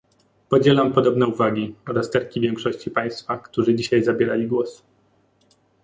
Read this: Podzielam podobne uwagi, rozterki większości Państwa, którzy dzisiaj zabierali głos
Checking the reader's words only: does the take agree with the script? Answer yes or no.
yes